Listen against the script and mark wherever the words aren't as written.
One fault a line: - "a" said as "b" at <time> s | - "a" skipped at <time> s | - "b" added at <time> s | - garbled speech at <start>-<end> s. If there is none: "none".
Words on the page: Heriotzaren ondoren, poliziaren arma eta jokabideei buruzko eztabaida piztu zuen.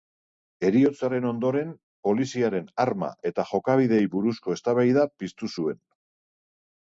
none